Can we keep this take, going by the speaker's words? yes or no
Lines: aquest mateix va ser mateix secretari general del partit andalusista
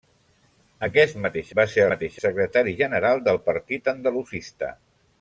yes